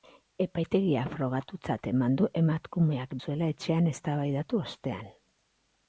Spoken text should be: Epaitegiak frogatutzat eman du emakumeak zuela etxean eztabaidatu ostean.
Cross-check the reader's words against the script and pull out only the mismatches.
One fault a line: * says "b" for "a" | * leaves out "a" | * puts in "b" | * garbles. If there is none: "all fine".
all fine